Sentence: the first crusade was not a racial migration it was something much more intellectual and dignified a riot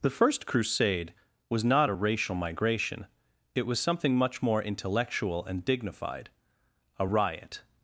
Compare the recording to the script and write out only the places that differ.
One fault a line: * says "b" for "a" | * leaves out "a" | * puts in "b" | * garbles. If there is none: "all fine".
all fine